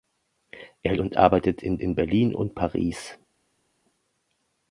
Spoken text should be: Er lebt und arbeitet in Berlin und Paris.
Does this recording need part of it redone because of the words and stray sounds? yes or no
yes